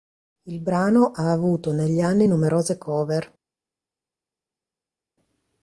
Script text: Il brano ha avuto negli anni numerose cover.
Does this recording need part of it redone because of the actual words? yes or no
no